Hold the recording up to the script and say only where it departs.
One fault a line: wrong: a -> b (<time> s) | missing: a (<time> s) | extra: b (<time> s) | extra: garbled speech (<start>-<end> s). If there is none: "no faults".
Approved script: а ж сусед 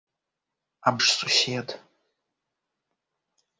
no faults